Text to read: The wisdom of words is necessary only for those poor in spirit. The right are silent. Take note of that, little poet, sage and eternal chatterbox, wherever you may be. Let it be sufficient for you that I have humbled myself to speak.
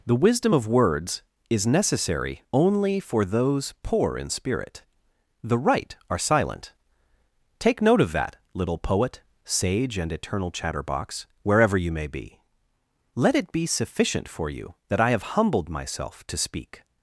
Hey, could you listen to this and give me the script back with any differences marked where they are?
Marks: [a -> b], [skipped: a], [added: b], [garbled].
The wisdom of words is necessary only for those poor in spirit. The right are silent. Take note of that, little poet, sage and eternal chatterbox, wherever you may be. Let it be sufficient for you that I have humbled myself to speak.